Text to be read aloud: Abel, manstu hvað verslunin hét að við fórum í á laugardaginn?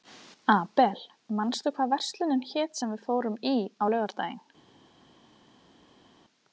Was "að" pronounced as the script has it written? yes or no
no